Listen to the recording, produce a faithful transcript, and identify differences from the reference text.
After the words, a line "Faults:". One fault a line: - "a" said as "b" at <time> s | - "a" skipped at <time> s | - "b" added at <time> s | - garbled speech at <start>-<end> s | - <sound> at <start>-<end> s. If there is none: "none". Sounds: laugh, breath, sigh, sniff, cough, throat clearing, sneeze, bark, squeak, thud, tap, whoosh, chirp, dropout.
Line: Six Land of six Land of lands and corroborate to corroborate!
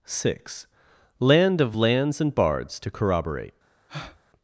Six Land of lands and bards to corroborate!
Faults:
- "six Land of" skipped at 1.8 s
- "corroborate" said as "bards" at 2.3 s
- breath at 3.9-4.2 s